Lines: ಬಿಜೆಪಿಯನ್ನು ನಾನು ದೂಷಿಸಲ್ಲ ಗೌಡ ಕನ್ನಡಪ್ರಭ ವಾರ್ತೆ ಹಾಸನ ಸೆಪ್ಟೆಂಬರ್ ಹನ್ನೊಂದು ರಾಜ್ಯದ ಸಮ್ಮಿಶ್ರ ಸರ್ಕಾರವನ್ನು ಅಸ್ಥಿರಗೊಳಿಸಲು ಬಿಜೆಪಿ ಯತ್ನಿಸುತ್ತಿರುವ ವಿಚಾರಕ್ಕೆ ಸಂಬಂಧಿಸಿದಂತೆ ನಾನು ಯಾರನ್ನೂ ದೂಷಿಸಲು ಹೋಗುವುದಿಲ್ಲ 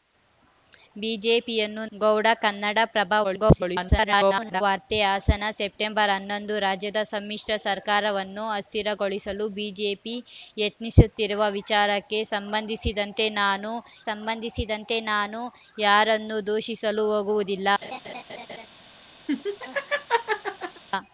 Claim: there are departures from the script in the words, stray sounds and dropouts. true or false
true